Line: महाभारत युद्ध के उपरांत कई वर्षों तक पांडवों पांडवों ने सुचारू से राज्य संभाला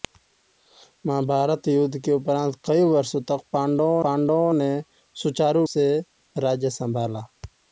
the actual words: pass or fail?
pass